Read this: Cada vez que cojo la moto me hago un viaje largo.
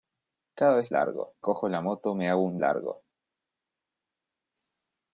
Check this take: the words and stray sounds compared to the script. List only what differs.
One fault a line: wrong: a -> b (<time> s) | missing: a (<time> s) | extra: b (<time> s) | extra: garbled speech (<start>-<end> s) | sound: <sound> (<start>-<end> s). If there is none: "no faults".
wrong: que -> largo (0.9 s)
missing: viaje (2.6 s)